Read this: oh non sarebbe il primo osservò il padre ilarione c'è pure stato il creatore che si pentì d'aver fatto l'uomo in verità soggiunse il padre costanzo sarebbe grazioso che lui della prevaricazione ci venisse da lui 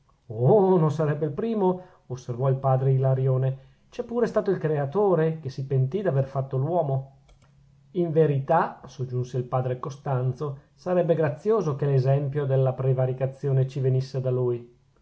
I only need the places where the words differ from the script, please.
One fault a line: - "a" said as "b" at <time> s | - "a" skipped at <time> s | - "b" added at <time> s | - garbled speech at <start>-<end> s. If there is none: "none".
- "lui" said as "l'esempio" at 11.9 s